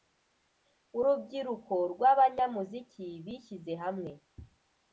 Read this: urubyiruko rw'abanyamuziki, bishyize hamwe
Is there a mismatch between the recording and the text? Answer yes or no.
no